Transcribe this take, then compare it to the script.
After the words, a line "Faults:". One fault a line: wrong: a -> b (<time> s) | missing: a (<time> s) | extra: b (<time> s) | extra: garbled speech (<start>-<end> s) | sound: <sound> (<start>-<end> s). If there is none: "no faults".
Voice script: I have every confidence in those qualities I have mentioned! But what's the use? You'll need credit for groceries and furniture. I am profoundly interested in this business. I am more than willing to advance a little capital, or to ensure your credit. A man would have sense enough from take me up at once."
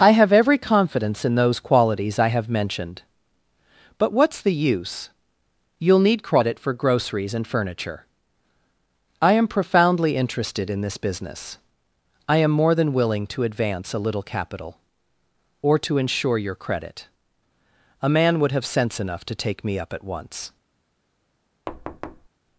I have every confidence in those qualities I have mentioned! But what's the use? You'll need credit for groceries and furniture. I am profoundly interested in this business. I am more than willing to advance a little capital, or to ensure your credit. A man would have sense enough to take me up at once."
Faults:
wrong: from -> to (19.2 s)
sound: thud (21.7-22.3 s)